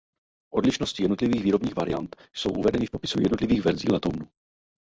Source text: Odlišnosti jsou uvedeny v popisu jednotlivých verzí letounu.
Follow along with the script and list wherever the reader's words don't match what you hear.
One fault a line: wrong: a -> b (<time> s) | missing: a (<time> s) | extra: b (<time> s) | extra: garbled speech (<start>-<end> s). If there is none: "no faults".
extra: jednotlivých výrobních variant (1.0 s)